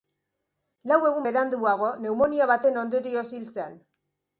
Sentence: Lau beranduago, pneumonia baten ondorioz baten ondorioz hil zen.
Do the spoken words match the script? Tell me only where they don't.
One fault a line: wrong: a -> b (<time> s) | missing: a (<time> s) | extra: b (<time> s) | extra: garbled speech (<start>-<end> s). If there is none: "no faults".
extra: egun (1.1 s)
missing: baten ondorioz (3.3 s)